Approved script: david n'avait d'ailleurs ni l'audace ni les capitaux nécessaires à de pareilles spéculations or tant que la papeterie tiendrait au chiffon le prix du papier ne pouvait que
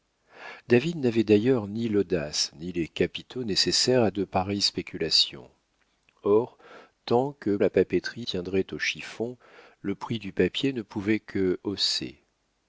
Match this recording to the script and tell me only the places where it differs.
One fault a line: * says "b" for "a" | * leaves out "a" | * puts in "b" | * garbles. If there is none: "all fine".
all fine